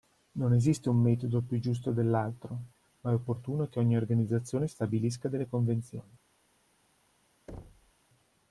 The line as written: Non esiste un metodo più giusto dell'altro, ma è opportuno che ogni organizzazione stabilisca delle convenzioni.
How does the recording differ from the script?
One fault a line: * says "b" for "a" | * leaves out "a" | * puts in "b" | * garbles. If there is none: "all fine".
all fine